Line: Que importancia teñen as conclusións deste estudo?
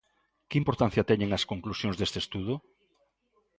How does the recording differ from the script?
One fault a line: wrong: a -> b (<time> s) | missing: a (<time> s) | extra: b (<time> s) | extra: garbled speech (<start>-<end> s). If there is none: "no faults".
no faults